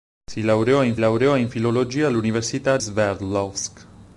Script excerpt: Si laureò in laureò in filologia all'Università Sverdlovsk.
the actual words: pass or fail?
pass